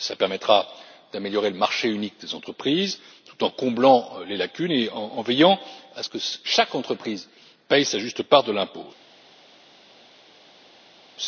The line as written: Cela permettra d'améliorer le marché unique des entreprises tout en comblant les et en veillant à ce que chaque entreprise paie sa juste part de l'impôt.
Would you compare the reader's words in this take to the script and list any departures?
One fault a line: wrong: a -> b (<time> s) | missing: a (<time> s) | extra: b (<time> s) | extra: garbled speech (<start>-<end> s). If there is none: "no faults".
extra: lacunes (4.3 s)